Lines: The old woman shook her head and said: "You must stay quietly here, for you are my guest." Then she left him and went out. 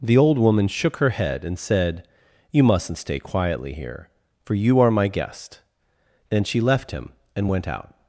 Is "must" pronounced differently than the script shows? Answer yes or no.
yes